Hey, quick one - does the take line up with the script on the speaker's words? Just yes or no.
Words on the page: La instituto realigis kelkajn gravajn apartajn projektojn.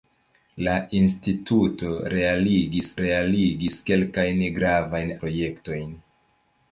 no